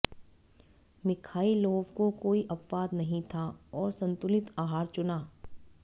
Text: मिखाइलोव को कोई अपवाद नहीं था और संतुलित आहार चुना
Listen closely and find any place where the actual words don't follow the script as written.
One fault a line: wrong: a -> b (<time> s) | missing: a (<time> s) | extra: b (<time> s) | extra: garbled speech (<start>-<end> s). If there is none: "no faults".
no faults